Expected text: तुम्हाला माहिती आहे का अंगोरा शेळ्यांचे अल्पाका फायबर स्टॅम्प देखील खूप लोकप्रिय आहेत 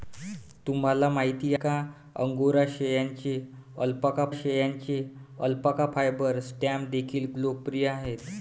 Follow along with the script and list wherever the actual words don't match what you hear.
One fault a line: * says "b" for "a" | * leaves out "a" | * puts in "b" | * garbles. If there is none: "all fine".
* leaves out "आहे"
* puts in "शेळ्यांचे अल्पाका"
* leaves out "खूप"